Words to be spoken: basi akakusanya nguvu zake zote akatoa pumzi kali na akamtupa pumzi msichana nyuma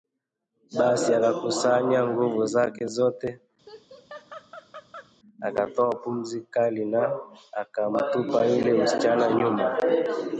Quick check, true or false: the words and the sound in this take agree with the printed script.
false